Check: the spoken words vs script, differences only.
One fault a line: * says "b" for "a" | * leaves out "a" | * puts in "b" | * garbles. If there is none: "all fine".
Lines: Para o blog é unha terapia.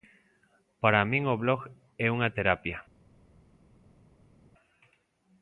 * puts in "min"